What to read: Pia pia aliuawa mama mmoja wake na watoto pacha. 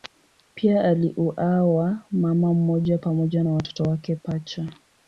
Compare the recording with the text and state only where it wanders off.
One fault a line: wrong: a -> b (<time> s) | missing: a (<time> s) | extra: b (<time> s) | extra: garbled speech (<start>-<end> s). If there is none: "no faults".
missing: pia (0.8 s)
wrong: wake -> pamoja (3.0 s)
extra: wake (3.8 s)